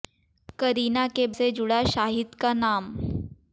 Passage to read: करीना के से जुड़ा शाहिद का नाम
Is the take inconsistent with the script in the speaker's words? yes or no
no